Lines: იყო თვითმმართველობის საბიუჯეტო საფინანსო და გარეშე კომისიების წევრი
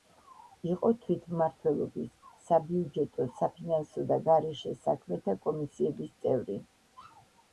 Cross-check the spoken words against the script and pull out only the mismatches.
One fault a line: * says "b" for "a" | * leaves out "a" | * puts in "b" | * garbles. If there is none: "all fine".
* puts in "საქმეთა"